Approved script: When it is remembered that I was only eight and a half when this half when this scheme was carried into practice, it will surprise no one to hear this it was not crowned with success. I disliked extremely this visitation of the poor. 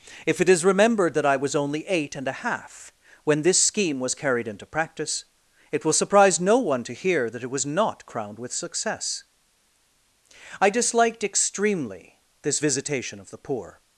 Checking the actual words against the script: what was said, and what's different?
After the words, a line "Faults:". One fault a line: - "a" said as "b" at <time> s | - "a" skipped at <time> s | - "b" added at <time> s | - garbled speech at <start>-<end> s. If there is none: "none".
If it is remembered that I was only eight and a half when this scheme was carried into practice, it will surprise no one to hear that it was not crowned with success. I disliked extremely this visitation of the poor.
Faults:
- "When" said as "If" at 0.2 s
- "half when this" skipped at 3.6 s
- "this" said as "that" at 7.3 s